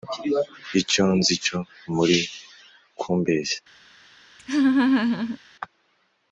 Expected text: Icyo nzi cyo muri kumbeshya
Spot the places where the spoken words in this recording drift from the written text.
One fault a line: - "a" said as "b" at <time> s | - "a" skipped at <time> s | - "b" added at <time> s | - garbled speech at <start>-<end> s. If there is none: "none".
none